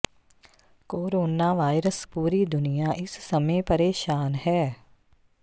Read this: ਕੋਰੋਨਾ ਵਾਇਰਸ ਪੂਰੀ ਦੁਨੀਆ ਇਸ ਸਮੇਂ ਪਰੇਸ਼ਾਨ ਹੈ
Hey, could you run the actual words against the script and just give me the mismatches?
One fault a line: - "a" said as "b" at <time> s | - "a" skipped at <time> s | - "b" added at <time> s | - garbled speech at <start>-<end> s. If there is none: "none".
none